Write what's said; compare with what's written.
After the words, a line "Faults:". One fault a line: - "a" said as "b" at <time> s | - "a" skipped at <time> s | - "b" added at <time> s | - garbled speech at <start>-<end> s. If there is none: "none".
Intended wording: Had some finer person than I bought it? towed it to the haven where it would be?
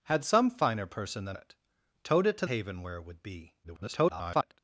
Had some finer person than it? towed it to haven where it would be? [garbled]
Faults:
- "I bought" skipped at 1.4 s
- "the" skipped at 2.5 s
- garbled speech at 3.6-4.6 s